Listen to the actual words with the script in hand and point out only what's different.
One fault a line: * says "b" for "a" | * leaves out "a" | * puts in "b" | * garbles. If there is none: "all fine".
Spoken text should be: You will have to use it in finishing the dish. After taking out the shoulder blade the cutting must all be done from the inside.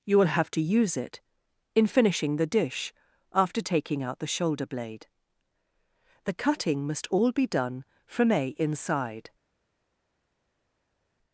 * says "a" for "the"